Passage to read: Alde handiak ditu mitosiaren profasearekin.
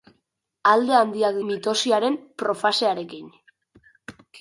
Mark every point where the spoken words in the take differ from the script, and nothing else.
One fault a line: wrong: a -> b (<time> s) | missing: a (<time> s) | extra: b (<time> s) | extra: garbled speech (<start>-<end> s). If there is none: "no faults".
missing: ditu (1.4 s)